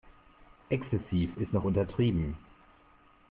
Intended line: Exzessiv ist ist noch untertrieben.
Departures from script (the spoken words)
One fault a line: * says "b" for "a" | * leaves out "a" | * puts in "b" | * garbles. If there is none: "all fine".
* leaves out "ist"